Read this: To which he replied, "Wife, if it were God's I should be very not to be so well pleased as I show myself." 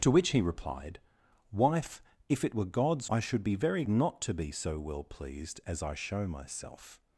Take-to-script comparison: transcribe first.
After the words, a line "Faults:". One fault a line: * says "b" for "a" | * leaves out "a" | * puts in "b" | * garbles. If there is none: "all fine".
To which he replied, "Wife, if it were God's I should be very not to be so well pleased as I show myself."
Faults:
all fine